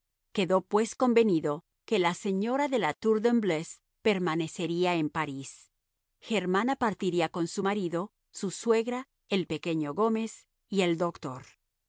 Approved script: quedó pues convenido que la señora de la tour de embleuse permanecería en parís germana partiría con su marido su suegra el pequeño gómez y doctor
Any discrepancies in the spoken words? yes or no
yes